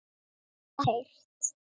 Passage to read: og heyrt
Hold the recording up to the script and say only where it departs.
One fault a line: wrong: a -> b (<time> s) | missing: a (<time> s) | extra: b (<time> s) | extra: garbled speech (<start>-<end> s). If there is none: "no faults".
no faults